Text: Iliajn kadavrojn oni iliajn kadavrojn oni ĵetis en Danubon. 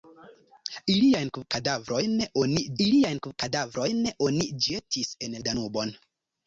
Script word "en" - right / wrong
right